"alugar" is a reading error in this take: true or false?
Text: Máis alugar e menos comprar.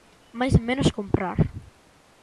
true